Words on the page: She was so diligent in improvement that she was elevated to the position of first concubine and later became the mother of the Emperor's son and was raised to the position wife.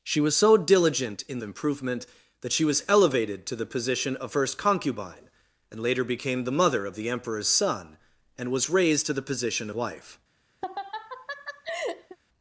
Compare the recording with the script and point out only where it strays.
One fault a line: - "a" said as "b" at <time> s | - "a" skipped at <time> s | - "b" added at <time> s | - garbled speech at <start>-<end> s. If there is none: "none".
none